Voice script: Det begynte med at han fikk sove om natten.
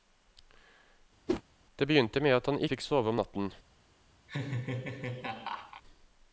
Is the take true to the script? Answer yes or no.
yes